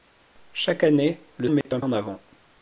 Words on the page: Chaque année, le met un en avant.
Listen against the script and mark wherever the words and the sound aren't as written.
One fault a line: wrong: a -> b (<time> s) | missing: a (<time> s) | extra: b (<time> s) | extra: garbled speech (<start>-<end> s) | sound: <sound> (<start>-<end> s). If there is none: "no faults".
sound: dropout (1.6-1.7 s)